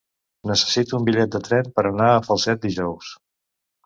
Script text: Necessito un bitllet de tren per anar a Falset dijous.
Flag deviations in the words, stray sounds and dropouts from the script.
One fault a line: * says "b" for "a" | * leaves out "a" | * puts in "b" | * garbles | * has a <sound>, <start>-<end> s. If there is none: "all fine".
all fine